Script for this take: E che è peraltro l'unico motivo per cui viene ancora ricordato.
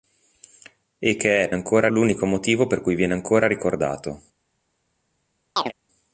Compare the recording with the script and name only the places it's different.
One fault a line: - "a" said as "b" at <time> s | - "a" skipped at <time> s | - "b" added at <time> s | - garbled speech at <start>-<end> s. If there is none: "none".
- "peraltro" said as "ancora" at 1.5 s